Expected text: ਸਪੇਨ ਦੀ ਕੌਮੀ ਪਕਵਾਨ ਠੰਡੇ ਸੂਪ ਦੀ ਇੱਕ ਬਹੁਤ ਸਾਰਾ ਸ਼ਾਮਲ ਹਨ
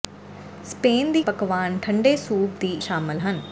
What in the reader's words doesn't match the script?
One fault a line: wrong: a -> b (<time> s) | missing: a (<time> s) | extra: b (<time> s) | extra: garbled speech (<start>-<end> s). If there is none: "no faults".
missing: ਕੌਮੀ (1.2 s)
missing: ਇੱਕ ਬਹੁਤ ਸਾਰਾ (2.7 s)